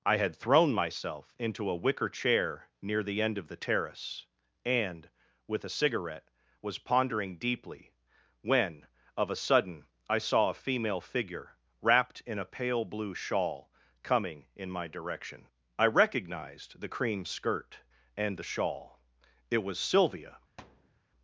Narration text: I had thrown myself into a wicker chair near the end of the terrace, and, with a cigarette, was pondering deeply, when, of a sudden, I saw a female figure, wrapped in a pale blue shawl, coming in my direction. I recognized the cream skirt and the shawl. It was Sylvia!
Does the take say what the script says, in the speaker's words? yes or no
yes